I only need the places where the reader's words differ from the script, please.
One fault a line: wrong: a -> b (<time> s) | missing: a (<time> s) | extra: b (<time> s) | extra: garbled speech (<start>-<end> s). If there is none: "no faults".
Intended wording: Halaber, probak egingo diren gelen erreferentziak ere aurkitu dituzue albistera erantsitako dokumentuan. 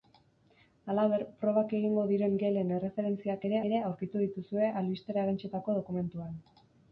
extra: ere (3.7 s)